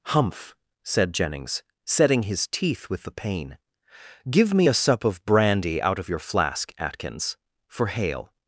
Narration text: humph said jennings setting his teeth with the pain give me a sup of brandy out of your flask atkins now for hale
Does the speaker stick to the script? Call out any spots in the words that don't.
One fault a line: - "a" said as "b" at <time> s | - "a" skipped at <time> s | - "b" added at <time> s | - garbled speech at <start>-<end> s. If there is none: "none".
- "now" skipped at 7.4 s